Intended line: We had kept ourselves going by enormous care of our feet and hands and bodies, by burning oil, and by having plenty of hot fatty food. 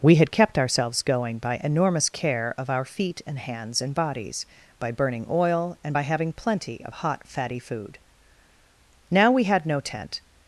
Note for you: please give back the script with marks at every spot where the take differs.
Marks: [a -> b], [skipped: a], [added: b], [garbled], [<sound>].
We had kept ourselves going by enormous care of our feet and hands and bodies, by burning oil, and by having plenty of hot fatty food. [added: Now we had no tent]